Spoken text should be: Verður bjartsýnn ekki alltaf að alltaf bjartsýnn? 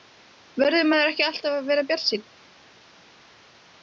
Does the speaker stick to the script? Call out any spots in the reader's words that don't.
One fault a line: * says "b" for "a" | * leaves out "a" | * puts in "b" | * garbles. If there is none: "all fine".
* says "maður" for "bjartsýnn"
* says "vera" for "alltaf"